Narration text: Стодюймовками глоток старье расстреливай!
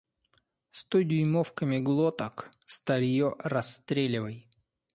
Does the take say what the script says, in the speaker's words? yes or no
yes